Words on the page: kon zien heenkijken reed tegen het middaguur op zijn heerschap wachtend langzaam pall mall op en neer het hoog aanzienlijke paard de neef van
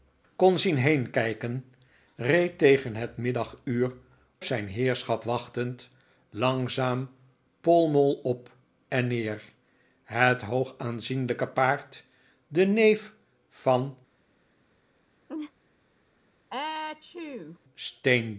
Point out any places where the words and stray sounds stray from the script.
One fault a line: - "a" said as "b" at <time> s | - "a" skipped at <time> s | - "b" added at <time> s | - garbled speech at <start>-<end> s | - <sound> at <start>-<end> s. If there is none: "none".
- "op" skipped at 3.9 s
- laugh at 15.3-15.5 s
- sneeze at 16.5-17.6 s